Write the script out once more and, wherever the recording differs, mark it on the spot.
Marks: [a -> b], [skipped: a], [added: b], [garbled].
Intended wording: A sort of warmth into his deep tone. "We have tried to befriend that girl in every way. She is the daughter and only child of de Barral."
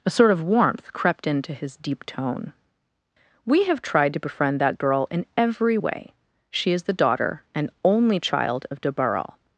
A sort of warmth [added: crept] into his deep tone. "We have tried to befriend that girl in every way. She is the daughter and only child of de Barral."